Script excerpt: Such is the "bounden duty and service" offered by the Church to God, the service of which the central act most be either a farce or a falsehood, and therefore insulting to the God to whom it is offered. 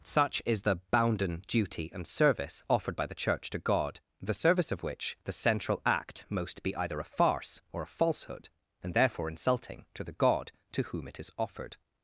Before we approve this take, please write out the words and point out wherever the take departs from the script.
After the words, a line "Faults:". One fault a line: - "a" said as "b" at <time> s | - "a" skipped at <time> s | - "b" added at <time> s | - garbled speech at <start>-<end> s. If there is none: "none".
Such is the "bounden duty and service" offered by the Church to God, the service of which the central act most be either a farce or a falsehood, and therefore insulting to the God to whom it is offered.
Faults:
none